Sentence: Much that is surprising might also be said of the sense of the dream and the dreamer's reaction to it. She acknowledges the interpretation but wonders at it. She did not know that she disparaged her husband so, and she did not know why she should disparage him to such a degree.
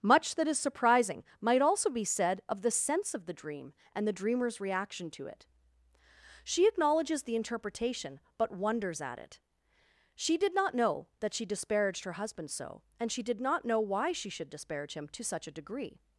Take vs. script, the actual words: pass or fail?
pass